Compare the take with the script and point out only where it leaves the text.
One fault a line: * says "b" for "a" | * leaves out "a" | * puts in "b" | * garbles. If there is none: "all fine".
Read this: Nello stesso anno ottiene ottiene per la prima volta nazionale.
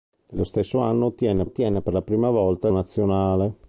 all fine